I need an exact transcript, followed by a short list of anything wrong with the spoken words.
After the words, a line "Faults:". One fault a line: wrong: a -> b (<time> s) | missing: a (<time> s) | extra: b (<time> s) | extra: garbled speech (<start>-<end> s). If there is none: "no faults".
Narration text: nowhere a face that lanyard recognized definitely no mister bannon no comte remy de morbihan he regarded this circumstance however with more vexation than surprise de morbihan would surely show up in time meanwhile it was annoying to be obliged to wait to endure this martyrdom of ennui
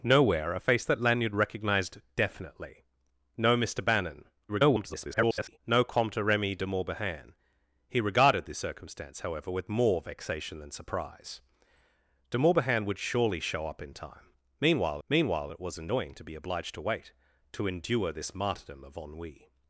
nowhere a face that lanyard recognized definitely no mister bannon [garbled] no comte remy de morbihan he regarded this circumstance however with more vexation than surprise de morbihan would surely show up in time meanwhile meanwhile it was annoying to be obliged to wait to endure this martyrdom of ennui
Faults:
extra: garbled speech (4.5-5.6 s)
extra: meanwhile (15.1 s)